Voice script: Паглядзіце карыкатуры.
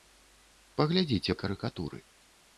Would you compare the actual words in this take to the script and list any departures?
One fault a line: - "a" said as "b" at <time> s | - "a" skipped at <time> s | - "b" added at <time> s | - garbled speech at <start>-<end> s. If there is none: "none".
none